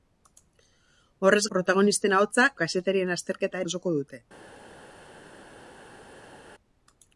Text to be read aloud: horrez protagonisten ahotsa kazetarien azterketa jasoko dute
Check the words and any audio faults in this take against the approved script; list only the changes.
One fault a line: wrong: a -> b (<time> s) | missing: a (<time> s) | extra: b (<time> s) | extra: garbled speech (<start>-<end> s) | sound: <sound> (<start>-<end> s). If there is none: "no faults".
no faults